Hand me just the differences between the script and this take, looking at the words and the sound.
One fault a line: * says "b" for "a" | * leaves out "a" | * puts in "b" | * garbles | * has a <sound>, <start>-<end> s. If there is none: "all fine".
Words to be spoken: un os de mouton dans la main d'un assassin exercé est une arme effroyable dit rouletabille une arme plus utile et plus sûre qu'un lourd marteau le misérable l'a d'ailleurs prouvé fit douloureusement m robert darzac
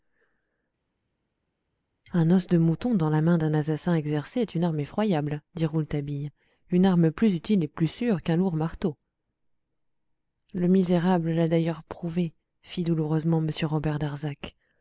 all fine